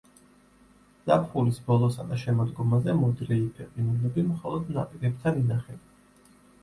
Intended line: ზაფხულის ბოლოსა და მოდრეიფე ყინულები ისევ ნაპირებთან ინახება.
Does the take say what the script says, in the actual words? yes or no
no